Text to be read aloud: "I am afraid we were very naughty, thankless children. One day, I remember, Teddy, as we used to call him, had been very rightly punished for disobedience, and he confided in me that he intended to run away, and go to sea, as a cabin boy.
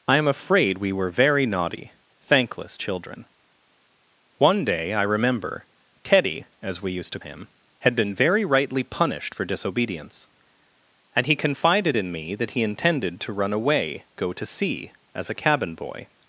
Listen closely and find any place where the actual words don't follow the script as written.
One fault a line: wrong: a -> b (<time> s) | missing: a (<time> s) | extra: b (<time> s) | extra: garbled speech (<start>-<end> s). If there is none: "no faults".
missing: call (7.2 s)
missing: and (14.0 s)